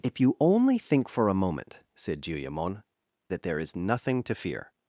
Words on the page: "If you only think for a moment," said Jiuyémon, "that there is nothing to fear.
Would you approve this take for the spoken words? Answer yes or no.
yes